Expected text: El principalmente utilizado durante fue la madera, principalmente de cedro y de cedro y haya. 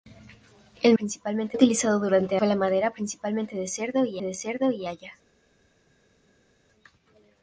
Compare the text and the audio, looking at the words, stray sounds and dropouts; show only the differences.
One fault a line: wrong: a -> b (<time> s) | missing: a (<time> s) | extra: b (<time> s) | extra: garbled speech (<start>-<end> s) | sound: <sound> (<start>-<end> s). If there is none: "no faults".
no faults